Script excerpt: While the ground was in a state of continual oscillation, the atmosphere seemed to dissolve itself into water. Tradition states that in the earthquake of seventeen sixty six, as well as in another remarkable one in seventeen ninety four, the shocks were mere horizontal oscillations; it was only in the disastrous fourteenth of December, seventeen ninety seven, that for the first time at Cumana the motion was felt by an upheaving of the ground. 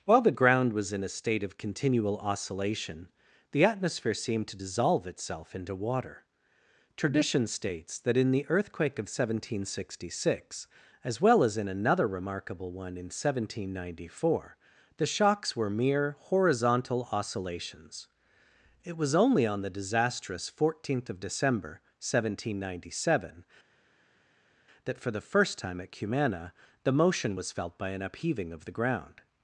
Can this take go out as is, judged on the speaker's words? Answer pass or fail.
fail